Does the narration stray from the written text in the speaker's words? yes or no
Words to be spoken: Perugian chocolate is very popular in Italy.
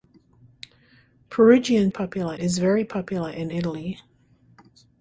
yes